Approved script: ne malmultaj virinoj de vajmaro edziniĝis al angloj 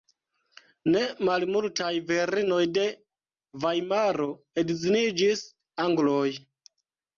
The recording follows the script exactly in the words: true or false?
false